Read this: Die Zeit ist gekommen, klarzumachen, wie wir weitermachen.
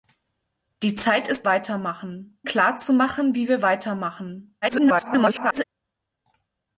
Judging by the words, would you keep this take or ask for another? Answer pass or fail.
fail